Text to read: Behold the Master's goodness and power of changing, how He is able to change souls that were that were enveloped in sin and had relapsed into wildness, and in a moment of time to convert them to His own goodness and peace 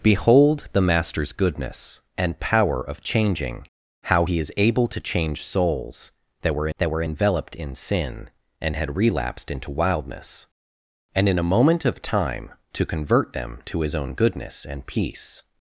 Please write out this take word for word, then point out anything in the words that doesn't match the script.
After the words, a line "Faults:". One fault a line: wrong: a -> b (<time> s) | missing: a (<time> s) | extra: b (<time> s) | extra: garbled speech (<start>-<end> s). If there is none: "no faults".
Behold the Master's goodness and power of changing, how He is able to change souls that were that were enveloped in sin and had relapsed into wildness, and in a moment of time to convert them to His own goodness and peace
Faults:
no faults